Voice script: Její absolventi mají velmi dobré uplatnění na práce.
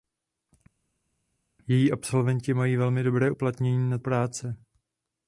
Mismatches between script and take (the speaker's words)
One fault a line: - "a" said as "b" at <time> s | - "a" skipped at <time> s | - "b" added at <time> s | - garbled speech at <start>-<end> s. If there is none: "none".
none